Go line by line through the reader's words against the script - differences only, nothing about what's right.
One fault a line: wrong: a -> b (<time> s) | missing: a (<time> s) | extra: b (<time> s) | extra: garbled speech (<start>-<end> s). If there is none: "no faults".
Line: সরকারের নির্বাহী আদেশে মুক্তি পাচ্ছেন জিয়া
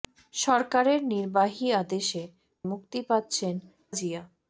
no faults